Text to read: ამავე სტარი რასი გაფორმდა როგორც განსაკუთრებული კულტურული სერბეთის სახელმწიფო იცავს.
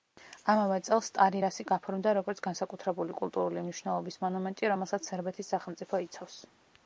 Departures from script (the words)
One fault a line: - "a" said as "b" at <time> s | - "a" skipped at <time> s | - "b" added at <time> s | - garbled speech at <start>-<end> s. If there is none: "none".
- "წელს" added at 0.8 s
- "მნიშვნელობის მონუმენტი რომელსაც" added at 3.7 s